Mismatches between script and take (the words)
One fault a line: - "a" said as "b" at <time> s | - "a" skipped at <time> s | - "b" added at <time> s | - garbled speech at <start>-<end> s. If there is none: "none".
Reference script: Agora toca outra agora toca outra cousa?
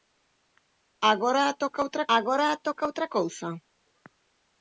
none